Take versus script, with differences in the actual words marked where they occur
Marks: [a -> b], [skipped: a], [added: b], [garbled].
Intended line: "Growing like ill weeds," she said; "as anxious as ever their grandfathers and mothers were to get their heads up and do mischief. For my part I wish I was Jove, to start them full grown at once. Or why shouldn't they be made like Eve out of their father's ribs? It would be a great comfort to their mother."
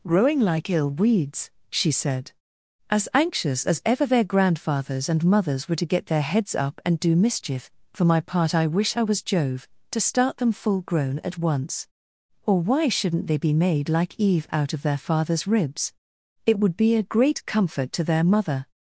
"Growing like ill weeds," she said; "as anxious as ever their grandfathers and mothers were to get their heads up and do mischief. For my part I wish I was Jove, to start them full grown at once. Or why shouldn't they be made like Eve out of their father's ribs? It would be a great comfort to their mother."